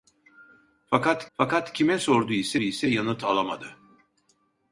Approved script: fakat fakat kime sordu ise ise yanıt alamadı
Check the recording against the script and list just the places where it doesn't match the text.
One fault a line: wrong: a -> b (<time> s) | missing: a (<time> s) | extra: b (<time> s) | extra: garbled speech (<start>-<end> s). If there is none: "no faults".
no faults